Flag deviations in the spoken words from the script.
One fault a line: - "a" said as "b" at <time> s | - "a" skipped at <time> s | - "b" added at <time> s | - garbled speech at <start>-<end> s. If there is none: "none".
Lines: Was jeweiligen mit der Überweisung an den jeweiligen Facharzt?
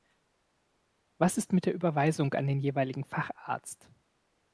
- "jeweiligen" said as "ist" at 1.4 s